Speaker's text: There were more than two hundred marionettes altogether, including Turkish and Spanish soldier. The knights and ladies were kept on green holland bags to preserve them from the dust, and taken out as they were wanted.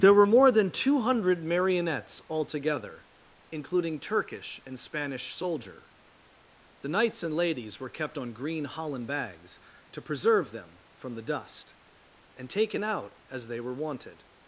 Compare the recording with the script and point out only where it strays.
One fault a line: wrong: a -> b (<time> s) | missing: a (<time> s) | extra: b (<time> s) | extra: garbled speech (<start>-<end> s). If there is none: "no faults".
no faults